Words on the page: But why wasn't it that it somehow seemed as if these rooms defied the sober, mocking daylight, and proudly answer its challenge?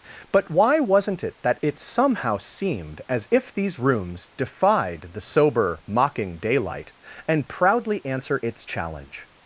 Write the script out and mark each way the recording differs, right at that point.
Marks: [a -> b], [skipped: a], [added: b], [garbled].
But why wasn't it that it somehow seemed as if these rooms defied the sober, mocking daylight, and proudly answer its challenge?